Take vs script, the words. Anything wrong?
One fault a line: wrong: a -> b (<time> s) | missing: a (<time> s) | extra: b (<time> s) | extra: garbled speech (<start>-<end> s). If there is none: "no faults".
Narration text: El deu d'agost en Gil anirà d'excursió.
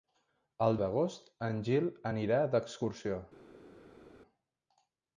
missing: deu (0.8 s)